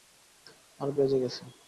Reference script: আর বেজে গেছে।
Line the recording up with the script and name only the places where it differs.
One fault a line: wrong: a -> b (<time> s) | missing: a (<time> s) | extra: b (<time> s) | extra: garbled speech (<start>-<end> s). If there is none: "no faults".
no faults